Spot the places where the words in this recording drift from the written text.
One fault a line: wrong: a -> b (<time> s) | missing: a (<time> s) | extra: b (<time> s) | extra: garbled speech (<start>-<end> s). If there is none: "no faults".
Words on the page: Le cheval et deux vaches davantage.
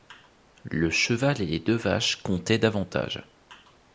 extra: les (1.4 s)
extra: comptaient (2.2 s)